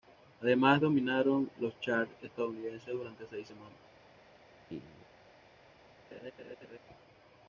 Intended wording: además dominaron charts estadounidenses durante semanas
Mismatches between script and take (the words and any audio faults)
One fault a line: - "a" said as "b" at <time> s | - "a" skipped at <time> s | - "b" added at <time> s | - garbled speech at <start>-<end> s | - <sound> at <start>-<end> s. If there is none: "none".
- "los" added at 1.6 s
- "seis" added at 3.3 s
- laugh at 4.7-5.1 s
- laugh at 6.1-6.8 s